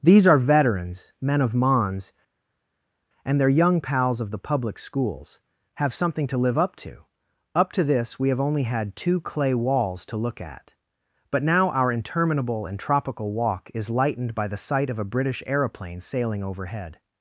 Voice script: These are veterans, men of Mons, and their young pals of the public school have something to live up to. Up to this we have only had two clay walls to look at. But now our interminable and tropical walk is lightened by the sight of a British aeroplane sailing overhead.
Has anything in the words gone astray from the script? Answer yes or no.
yes